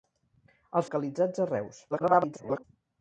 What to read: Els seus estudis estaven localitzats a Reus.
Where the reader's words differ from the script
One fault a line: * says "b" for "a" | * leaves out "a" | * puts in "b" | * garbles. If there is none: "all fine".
* leaves out "seus estudis estaven"
* garbles